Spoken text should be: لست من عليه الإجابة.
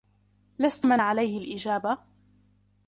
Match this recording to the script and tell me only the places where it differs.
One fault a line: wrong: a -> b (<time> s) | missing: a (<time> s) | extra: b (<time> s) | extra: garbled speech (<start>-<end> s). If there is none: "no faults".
no faults